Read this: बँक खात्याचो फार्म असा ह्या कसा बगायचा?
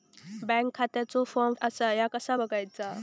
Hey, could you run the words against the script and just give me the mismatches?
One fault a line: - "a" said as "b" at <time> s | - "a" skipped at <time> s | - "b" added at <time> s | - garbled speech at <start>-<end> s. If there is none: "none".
none